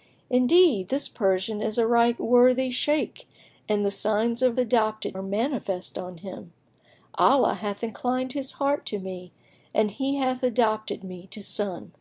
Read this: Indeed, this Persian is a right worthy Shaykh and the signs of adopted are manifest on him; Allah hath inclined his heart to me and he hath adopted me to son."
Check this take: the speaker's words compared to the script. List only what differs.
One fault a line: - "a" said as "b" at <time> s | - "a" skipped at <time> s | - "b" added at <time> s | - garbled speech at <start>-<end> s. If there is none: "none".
none